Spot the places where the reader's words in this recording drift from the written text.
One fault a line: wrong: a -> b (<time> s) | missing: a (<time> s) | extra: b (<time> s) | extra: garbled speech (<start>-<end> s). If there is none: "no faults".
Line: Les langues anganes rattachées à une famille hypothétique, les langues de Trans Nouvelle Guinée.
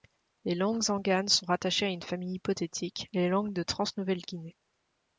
extra: sont (1.3 s)